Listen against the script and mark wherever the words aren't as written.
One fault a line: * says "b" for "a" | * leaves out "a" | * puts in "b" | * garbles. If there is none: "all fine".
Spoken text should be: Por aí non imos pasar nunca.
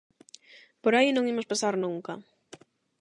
all fine